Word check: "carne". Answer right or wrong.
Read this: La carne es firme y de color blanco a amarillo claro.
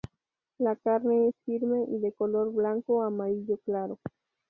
right